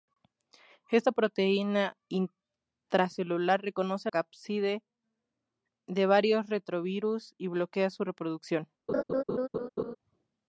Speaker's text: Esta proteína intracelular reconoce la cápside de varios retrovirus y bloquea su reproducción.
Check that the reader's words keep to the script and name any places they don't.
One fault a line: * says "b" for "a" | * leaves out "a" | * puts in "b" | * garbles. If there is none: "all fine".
* leaves out "la"